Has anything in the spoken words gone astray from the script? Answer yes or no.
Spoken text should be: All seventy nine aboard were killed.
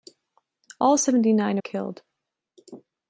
yes